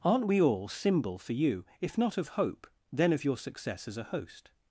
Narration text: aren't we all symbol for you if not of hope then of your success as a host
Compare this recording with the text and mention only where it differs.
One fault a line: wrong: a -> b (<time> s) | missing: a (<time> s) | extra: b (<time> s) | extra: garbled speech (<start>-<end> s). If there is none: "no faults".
no faults